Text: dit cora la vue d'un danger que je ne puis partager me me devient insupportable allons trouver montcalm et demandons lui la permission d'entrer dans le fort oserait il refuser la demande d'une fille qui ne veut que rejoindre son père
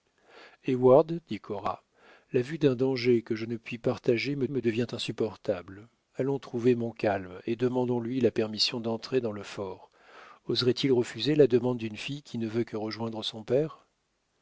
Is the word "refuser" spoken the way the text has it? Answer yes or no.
yes